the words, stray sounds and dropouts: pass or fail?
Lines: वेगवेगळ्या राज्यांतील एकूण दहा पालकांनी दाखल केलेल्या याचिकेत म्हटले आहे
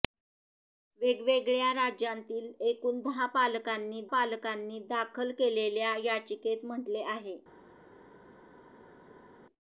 fail